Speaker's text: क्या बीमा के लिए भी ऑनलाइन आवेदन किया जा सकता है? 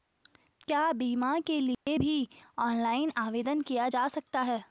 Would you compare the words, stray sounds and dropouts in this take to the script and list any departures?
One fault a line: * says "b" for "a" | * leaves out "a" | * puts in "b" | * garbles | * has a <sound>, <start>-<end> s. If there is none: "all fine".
* has a dropout, 1.7-1.9 s